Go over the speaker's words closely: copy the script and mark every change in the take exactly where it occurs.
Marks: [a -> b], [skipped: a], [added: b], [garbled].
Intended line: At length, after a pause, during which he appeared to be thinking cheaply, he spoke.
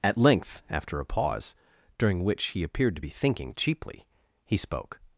At length, after a pause, during which he appeared to be thinking cheaply, he spoke.